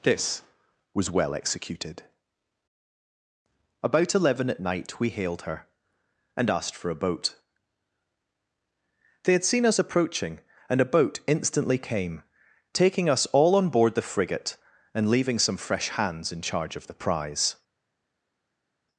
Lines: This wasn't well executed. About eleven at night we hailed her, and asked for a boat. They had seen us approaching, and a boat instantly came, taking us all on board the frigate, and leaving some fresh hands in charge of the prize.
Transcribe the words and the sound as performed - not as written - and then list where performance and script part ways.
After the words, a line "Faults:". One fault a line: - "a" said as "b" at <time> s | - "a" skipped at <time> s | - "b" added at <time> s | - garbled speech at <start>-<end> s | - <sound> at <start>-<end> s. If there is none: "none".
This was well executed. About eleven at night we hailed her, and asked for a boat. They had seen us approaching, and a boat instantly came, taking us all on board the frigate, and leaving some fresh hands in charge of the prize.
Faults:
- "wasn't" said as "was" at 0.9 s